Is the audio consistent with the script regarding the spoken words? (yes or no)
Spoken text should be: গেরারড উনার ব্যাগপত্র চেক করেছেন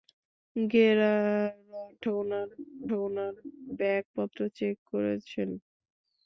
no